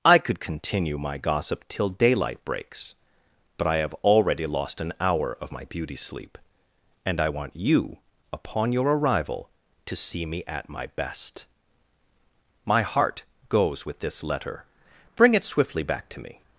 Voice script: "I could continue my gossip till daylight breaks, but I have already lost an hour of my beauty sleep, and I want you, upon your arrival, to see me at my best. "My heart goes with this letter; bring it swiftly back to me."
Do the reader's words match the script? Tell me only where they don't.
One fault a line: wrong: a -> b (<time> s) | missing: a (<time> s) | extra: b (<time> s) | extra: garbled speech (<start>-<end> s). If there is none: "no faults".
no faults